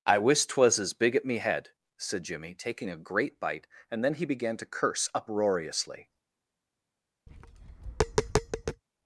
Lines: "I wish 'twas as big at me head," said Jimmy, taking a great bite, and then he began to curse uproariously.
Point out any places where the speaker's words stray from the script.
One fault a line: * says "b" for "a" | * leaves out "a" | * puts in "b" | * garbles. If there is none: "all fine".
all fine